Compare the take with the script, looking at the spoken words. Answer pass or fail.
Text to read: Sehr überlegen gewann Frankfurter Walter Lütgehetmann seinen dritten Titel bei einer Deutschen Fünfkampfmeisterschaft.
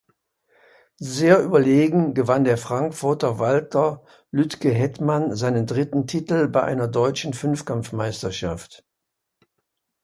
fail